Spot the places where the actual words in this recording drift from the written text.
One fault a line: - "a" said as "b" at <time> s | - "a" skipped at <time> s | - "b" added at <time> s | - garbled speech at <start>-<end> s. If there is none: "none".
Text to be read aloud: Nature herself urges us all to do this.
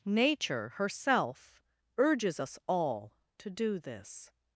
none